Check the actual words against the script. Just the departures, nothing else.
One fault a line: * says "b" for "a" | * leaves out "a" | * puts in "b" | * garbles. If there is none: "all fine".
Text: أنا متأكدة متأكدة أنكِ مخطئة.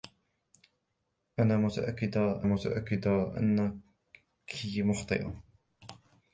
all fine